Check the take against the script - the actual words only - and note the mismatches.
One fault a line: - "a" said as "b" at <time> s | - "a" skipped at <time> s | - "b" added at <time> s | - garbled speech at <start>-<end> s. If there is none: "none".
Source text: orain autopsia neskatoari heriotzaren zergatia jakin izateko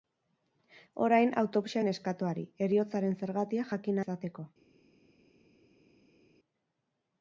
none